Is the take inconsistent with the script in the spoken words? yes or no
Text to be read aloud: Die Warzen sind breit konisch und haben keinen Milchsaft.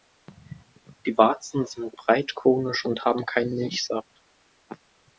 no